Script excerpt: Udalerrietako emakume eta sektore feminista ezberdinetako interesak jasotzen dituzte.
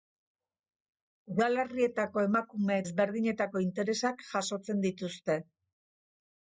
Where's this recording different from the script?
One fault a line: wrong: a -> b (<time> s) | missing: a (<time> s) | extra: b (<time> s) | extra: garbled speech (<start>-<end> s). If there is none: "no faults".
missing: eta sektore feminista (2.8 s)